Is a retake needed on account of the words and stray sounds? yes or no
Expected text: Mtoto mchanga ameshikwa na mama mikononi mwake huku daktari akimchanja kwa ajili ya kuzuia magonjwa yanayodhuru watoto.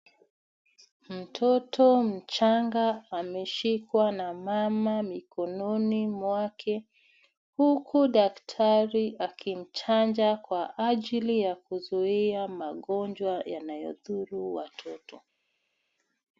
no